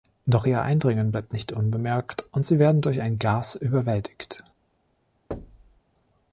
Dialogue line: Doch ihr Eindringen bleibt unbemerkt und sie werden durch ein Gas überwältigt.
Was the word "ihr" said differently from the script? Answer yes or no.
no